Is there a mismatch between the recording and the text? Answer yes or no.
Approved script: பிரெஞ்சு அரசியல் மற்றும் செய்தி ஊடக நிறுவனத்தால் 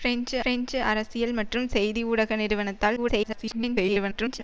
yes